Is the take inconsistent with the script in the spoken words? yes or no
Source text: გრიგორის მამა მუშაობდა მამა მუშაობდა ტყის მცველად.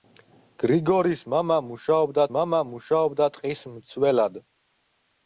no